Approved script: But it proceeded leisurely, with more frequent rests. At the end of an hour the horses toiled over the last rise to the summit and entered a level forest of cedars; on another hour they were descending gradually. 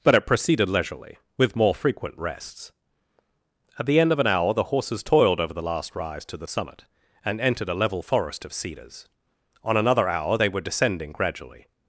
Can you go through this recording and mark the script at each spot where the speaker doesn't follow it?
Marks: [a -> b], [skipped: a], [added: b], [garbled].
But it proceeded leisurely, with more frequent rests. At the end of an hour the horses toiled over the last rise to the summit and entered a level forest of cedars; on another hour they were descending gradually.